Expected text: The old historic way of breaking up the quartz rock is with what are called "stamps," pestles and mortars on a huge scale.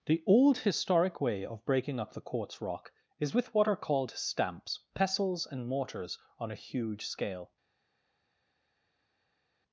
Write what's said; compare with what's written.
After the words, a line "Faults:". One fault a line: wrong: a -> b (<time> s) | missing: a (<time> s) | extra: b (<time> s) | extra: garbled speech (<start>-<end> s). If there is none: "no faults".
The old historic way of breaking up the quartz rock is with what are called "stamps," pestles and mortars on a huge scale.
Faults:
no faults